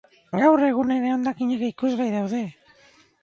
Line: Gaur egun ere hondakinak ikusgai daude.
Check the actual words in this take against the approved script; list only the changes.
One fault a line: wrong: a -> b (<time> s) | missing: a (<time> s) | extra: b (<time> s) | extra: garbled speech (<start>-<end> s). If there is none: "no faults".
no faults